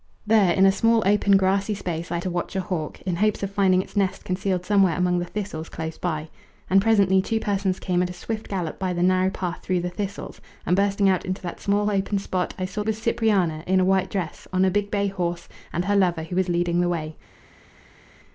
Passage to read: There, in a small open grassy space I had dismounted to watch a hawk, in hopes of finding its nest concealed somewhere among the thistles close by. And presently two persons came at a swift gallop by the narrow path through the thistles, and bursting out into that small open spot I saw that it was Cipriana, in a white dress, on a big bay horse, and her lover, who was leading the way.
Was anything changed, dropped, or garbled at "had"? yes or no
yes